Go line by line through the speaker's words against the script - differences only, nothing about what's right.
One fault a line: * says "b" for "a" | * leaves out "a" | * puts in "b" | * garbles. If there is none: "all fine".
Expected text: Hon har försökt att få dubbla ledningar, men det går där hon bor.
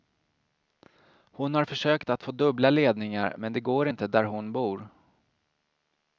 * puts in "inte"